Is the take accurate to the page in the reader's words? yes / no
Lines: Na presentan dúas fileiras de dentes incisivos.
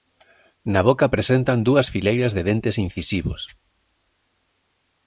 no